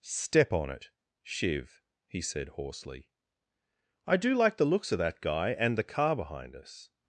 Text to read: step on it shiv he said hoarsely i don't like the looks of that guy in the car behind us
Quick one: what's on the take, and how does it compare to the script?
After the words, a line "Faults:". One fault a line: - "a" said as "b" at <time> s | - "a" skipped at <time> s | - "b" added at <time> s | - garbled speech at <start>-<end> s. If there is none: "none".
step on it shiv he said hoarsely i do like the looks of that guy and the car behind us
Faults:
- "don't" said as "do" at 4.2 s
- "in" said as "and" at 5.5 s